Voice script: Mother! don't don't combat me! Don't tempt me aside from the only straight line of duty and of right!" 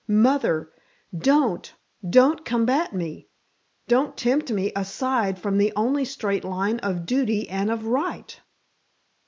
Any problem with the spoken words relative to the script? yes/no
no